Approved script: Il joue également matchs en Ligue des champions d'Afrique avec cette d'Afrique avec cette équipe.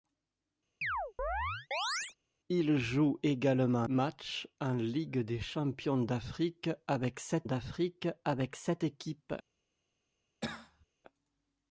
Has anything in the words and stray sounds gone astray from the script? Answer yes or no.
yes